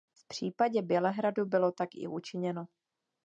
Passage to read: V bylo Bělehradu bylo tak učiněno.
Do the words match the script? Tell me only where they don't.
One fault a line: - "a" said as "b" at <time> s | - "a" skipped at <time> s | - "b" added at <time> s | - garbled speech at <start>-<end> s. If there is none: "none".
- "bylo" said as "případě" at 0.3 s
- "i" added at 1.9 s